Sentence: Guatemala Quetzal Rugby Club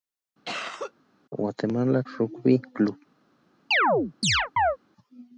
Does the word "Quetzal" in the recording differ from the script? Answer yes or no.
yes